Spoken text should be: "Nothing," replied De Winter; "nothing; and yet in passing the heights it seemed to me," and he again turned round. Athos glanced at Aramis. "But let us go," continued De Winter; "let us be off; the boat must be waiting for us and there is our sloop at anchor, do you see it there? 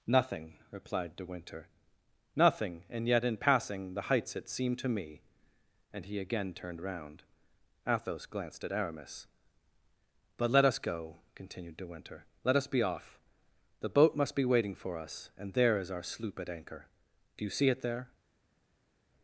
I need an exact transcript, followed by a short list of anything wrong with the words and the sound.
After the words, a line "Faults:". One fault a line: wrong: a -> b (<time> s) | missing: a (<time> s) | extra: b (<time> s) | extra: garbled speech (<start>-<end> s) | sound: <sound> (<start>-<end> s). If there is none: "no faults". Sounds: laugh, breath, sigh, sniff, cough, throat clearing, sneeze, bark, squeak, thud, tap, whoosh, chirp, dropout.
"Nothing," replied De Winter; "nothing; and yet in passing the heights it seemed to me," and he again turned round. Athos glanced at Aramis. "But let us go," continued De Winter; "let us be off; the boat must be waiting for us and there is our sloop at anchor, do you see it there?
Faults:
no faults